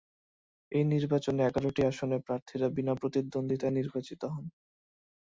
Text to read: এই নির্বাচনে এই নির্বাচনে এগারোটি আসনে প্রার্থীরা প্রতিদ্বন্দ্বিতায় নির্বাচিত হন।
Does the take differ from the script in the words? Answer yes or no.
yes